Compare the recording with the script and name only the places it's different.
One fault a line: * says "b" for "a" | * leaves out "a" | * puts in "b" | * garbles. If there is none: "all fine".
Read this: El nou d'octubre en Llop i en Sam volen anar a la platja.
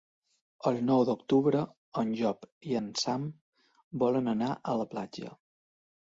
all fine